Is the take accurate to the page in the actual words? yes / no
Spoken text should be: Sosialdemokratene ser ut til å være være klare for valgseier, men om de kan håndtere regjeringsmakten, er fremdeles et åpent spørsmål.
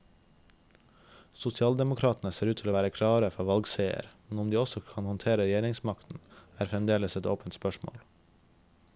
no